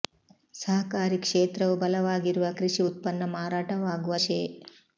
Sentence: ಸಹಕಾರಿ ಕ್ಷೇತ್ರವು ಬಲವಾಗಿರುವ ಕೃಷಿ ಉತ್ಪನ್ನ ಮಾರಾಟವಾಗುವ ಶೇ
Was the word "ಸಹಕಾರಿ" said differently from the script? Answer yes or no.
no